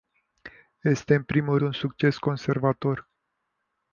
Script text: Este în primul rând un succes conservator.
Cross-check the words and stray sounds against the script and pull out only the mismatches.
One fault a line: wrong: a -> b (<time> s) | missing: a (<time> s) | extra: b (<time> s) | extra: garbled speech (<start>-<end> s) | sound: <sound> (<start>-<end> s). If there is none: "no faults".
missing: rând (1.6 s)